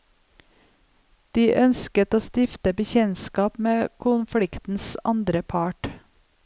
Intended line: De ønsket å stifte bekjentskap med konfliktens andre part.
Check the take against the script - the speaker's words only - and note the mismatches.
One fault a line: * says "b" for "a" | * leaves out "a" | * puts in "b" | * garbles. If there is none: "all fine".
all fine